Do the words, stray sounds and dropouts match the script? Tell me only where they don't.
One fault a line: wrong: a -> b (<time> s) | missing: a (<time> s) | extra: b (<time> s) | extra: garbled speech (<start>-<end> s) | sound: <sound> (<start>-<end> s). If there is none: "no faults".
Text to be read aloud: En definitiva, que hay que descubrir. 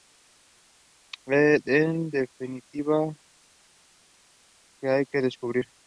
no faults